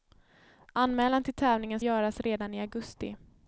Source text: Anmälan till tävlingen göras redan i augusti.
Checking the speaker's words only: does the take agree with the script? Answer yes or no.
yes